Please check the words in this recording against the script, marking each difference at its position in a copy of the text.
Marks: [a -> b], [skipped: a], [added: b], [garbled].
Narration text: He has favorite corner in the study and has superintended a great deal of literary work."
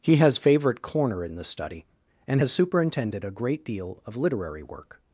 He has favorite corner in the study and has superintended a great deal of literary work."